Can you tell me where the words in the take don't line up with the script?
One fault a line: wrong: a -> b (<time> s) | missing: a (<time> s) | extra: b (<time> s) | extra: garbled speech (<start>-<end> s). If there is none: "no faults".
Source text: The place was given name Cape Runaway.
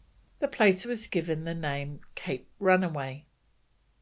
extra: the (1.4 s)